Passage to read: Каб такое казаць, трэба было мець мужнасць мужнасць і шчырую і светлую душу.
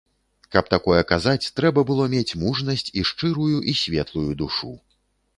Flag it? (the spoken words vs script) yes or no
yes